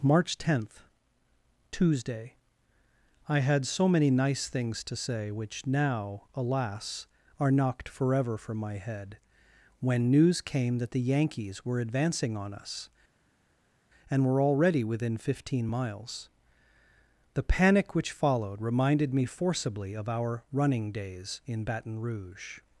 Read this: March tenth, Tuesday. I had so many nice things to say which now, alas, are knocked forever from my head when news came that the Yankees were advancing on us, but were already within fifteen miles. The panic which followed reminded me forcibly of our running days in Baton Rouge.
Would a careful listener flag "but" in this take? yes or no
yes